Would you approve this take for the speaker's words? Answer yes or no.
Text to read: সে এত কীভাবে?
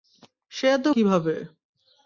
yes